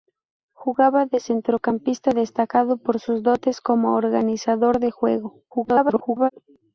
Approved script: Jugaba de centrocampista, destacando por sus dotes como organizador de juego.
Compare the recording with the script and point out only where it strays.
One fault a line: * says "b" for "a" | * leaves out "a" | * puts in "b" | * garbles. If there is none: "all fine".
* garbles